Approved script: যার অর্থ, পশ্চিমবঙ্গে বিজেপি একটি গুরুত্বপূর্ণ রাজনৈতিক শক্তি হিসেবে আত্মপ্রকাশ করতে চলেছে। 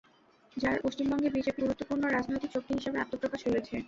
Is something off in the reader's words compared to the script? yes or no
yes